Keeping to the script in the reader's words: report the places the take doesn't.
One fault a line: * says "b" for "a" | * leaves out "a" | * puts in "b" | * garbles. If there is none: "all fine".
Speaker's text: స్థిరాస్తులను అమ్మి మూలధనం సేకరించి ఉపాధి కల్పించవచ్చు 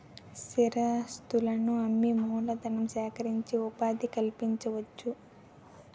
all fine